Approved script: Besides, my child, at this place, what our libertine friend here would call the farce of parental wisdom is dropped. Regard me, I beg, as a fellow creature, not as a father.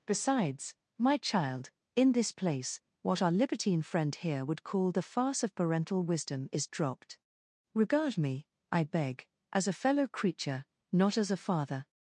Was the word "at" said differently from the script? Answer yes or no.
yes